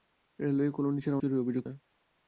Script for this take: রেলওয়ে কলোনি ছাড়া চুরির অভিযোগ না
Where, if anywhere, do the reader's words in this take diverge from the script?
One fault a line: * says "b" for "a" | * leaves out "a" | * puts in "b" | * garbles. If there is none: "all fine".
all fine